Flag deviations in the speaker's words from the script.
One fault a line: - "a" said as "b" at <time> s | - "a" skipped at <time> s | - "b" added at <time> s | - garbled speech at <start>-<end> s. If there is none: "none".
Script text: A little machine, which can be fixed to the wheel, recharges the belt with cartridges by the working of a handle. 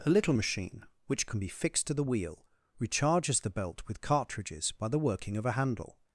none